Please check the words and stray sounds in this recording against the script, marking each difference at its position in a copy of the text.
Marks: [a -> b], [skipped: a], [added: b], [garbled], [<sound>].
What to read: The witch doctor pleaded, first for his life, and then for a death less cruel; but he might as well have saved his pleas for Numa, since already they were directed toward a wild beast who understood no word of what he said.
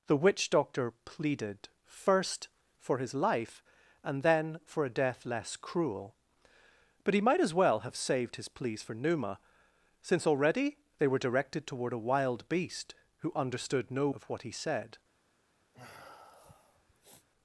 The witch doctor pleaded, first for his life, and then for a death less cruel; but he might as well have saved his pleas for Numa, since already they were directed toward a wild beast who understood no [skipped: word] of what he said. [sniff]